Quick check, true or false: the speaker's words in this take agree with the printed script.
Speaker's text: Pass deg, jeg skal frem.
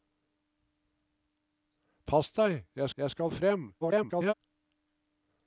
false